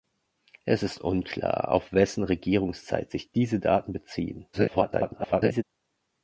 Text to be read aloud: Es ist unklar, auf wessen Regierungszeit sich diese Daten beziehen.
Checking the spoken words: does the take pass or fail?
fail